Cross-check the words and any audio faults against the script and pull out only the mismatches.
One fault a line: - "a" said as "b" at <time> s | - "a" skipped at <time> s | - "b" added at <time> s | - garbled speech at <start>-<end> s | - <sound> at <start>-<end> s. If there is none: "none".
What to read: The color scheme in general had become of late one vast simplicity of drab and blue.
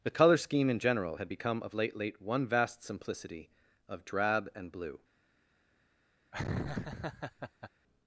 - "late" added at 1.9 s
- laugh at 6.3-7.7 s